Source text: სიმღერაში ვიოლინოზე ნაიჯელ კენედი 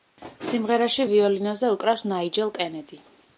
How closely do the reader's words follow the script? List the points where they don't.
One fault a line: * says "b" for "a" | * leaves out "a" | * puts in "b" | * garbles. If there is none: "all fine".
* puts in "უკრავს"